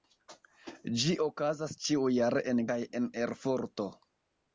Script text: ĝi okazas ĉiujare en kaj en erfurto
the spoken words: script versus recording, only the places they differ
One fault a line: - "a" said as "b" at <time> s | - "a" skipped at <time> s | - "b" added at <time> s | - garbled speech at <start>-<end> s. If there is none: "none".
none